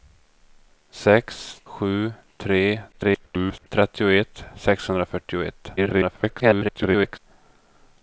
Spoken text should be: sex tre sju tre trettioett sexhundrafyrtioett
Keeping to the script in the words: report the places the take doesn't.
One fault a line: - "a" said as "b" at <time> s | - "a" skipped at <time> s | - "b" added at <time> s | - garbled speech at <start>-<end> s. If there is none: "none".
- "tre" skipped at 1.4 s
- garbled speech at 2.9-3.7 s
- garbled speech at 5.8-7.2 s